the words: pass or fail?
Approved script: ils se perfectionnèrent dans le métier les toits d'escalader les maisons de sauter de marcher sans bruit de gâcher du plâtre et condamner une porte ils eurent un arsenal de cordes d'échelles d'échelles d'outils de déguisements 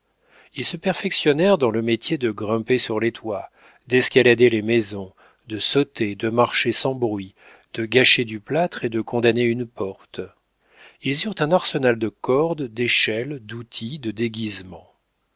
fail